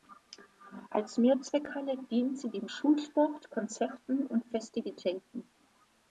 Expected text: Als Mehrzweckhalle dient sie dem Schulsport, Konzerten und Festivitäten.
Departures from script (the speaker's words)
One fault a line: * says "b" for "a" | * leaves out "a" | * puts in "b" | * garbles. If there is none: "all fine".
all fine